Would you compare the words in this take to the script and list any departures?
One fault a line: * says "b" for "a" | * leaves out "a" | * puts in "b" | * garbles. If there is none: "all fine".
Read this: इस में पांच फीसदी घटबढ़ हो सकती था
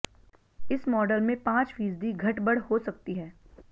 * puts in "मॉडल"
* says "है" for "था"